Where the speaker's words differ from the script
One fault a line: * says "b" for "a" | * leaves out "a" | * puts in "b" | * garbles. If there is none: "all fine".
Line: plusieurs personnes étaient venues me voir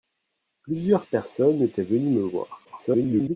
* garbles